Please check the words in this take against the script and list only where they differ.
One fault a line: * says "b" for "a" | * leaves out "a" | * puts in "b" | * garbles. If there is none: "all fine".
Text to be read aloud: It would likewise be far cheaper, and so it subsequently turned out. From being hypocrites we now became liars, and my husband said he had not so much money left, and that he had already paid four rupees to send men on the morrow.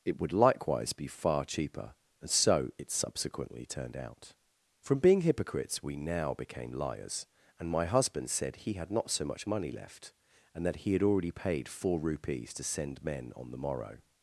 all fine